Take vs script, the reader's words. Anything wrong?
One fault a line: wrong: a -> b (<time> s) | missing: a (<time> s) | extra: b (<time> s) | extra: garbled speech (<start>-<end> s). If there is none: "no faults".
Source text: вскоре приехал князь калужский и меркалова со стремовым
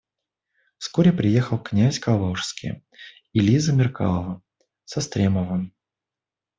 extra: лиза (3.4 s)